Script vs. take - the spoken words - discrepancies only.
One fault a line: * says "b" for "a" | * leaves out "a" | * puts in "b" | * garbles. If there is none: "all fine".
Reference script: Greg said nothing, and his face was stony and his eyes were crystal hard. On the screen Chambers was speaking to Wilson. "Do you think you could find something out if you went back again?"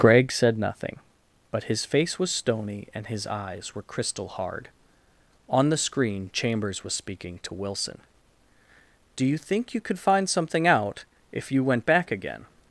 * says "but" for "and"